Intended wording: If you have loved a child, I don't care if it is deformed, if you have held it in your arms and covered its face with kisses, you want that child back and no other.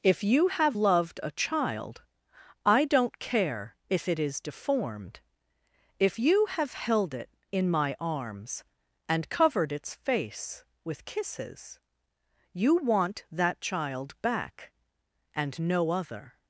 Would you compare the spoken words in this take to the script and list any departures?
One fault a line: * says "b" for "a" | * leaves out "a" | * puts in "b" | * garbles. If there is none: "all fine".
* says "my" for "your"